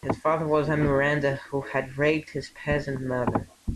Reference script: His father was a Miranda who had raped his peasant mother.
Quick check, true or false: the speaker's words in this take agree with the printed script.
true